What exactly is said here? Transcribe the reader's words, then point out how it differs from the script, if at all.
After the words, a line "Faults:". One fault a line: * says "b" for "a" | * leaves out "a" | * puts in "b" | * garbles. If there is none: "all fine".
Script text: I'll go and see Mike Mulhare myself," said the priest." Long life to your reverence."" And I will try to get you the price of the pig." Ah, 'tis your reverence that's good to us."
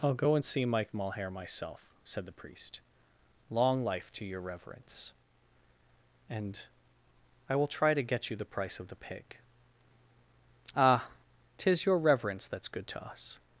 I'll go and see Mike Mulhare myself," said the priest." Long life to your reverence."" And I will try to get you the price of the pig." Ah, 'tis your reverence that's good to us."
Faults:
all fine